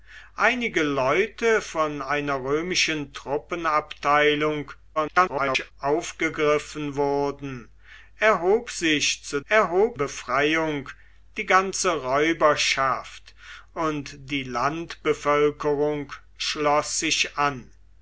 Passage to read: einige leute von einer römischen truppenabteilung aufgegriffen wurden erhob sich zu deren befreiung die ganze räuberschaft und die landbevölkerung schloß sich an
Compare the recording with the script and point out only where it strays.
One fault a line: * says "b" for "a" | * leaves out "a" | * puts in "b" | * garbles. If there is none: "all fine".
* garbles
* says "erhob" for "deren"